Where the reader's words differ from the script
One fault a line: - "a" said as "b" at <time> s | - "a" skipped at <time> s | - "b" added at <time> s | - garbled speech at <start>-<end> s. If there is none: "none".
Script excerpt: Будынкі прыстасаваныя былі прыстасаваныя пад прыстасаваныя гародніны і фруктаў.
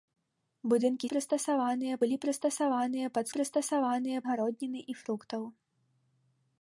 none